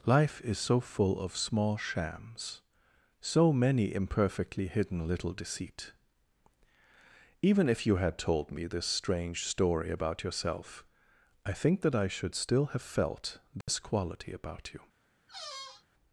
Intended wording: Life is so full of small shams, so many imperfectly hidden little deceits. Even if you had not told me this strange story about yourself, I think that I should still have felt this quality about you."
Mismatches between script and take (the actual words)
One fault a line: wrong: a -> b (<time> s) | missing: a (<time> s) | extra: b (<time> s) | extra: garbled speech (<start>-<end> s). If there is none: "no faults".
wrong: deceits -> deceit (5.3 s)
missing: not (8.2 s)